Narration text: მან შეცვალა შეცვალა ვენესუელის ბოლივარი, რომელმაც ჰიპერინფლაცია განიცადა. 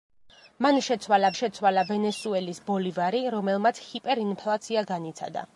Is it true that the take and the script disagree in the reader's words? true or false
false